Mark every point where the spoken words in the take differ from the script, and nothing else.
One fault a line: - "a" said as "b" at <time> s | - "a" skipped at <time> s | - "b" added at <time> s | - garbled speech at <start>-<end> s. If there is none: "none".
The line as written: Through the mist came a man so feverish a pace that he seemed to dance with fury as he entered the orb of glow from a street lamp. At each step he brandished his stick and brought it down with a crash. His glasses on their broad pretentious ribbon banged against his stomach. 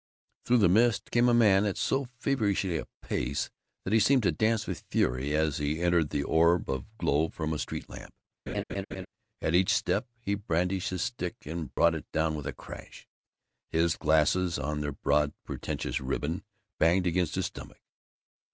- "at" added at 1.6 s